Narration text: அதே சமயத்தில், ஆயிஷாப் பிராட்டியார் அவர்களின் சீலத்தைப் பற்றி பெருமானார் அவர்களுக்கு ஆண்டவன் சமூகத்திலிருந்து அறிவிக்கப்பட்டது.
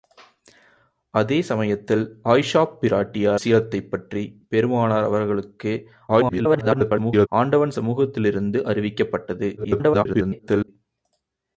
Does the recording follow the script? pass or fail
fail